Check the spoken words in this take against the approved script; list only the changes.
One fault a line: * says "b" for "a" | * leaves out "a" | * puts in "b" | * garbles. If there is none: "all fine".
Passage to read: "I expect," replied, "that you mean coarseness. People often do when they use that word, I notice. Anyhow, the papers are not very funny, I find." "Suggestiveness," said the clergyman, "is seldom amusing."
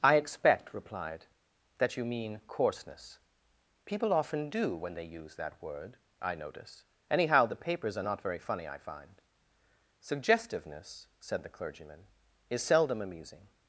all fine